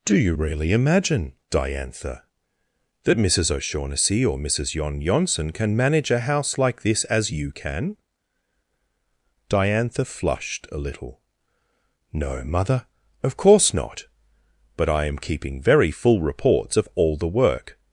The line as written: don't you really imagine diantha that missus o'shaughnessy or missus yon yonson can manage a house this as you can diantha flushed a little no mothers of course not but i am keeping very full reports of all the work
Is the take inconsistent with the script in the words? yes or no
yes